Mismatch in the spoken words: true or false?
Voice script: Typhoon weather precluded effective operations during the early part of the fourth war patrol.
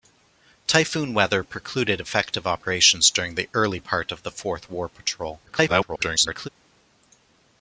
true